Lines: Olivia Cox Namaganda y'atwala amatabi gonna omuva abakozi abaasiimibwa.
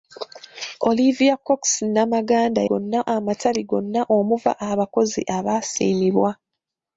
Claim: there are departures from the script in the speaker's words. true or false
true